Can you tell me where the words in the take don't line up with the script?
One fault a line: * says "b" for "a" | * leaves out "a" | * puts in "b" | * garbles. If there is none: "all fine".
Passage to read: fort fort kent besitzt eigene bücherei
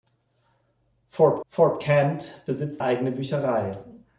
all fine